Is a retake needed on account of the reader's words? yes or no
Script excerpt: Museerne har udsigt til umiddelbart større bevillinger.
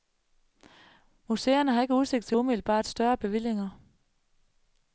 yes